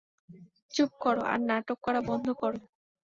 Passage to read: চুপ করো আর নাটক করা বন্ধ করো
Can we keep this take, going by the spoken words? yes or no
yes